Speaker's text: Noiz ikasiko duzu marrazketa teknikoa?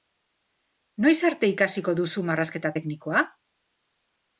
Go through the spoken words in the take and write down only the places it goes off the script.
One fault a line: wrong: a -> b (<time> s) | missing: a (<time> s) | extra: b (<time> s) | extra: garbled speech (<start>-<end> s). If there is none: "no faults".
extra: arte (1.3 s)